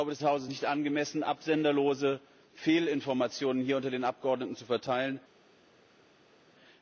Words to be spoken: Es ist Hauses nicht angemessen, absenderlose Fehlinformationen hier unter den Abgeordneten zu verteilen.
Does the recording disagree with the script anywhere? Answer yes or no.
no